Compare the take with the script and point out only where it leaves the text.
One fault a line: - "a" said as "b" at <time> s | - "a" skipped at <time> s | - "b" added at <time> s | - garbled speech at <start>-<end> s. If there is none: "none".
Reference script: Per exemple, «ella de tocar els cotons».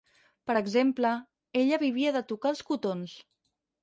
- "vivia" added at 1.8 s